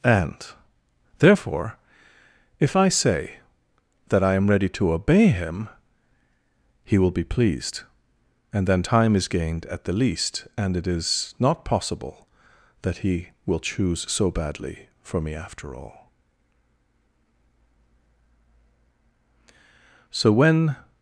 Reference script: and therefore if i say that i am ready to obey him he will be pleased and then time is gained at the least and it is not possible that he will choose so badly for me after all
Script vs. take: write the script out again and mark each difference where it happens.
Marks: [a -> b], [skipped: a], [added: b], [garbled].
and therefore if i say that i am ready to obey him he will be pleased and then time is gained at the least and it is not possible that he will choose so badly for me after all [added: so when]